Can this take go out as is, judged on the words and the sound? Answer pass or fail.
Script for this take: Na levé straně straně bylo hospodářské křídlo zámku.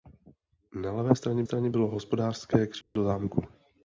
fail